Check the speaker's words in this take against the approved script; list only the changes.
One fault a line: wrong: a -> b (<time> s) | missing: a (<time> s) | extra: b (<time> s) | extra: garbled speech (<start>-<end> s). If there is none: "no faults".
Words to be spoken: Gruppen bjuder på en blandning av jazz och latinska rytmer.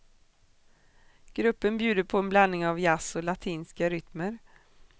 no faults